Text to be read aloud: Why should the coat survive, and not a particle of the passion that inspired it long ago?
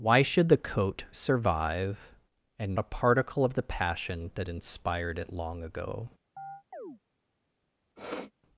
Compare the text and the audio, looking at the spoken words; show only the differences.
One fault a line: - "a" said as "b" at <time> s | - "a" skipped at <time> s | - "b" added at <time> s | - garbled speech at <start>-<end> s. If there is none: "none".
- "not" skipped at 2.8 s